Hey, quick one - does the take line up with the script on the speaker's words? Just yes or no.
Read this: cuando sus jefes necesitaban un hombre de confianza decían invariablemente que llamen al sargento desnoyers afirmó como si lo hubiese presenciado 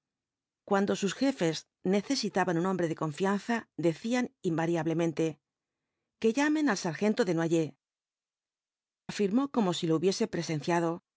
yes